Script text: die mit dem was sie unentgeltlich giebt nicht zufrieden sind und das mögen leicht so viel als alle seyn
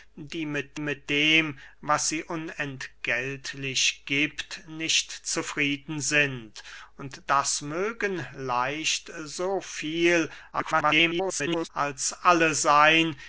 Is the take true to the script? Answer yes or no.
no